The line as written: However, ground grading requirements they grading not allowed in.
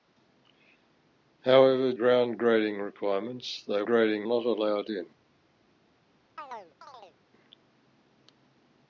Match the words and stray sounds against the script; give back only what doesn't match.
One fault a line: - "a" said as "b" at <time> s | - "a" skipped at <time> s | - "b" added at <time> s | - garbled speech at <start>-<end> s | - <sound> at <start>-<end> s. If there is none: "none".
- chirp at 6.4-7.2 s